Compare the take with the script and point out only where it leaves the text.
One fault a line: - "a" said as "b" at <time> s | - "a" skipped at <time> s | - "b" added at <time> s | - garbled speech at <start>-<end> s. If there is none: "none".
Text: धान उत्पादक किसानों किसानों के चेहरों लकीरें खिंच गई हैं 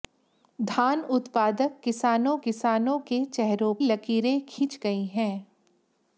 none